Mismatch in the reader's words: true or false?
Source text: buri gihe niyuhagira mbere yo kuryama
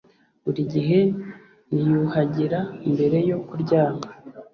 false